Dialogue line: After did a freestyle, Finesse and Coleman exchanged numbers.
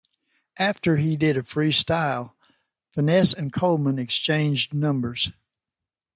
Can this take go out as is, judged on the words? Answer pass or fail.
fail